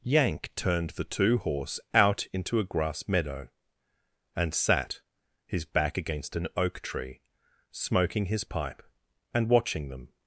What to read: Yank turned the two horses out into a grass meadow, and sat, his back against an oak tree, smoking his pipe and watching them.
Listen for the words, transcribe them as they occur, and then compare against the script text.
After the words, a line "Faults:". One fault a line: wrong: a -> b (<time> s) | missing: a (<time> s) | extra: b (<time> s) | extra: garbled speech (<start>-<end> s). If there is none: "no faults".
Yank turned the two horse out into a grass meadow, and sat, his back against an oak tree, smoking his pipe and watching them.
Faults:
wrong: horses -> horse (1.4 s)